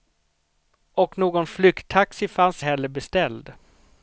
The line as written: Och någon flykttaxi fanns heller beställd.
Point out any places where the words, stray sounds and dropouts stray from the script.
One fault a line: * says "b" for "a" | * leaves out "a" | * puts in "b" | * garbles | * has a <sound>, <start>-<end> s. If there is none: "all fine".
all fine